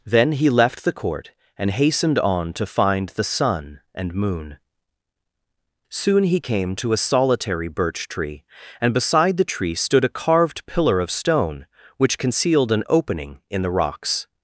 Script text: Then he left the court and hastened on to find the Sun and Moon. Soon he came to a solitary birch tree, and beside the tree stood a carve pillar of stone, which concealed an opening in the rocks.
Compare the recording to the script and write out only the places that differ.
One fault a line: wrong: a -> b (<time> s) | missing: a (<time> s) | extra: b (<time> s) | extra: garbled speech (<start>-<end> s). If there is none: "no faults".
wrong: carve -> carved (10.1 s)